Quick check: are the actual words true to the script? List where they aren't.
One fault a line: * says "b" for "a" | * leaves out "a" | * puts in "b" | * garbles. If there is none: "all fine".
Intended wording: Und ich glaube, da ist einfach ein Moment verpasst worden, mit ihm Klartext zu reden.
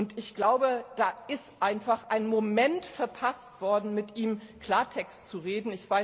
all fine